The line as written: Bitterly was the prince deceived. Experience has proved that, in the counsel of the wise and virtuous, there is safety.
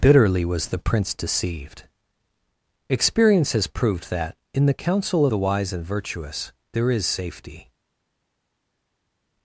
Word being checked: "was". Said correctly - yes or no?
yes